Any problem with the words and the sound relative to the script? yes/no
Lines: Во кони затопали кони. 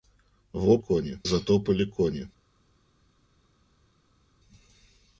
no